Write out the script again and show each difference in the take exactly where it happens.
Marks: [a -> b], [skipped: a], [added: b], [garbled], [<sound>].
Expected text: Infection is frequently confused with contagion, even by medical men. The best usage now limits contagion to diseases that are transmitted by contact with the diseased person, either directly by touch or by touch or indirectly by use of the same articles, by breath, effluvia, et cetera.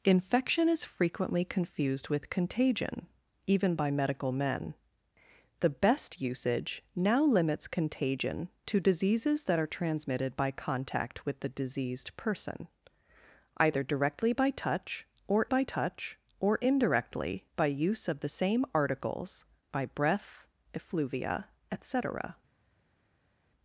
Infection is frequently confused with contagion, even by medical men. The best usage now limits contagion to diseases that are transmitted by contact with the diseased person, either directly by touch or by touch or indirectly by use of the same articles, by breath, effluvia, et cetera.